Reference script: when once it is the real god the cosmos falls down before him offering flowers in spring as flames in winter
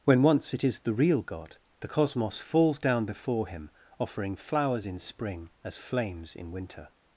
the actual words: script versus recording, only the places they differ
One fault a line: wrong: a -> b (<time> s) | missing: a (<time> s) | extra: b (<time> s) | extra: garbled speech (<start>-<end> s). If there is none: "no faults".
no faults